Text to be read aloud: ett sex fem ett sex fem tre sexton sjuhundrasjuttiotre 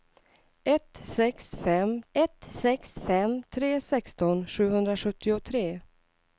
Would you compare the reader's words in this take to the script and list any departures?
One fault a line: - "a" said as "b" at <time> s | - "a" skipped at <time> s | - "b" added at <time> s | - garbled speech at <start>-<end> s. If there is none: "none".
none